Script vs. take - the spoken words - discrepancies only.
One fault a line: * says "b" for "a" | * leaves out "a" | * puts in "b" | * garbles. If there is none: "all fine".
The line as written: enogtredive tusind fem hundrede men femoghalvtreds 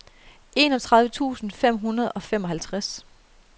* says "og" for "men"